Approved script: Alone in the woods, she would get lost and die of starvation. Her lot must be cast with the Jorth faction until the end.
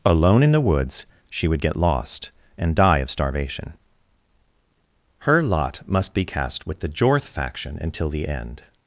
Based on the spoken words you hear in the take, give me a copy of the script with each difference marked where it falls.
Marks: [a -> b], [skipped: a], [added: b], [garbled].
Alone in the woods, she would get lost and die of starvation. Her lot must be cast with the Jorth faction until the end.